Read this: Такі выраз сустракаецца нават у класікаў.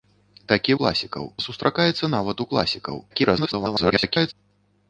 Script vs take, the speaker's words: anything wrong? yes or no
yes